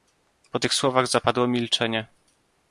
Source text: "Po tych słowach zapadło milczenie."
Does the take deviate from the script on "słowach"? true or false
false